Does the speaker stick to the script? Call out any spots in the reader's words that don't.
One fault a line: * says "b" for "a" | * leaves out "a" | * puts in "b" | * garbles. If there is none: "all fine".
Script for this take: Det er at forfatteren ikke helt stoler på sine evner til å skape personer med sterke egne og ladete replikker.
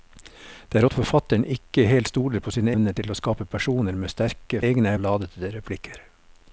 all fine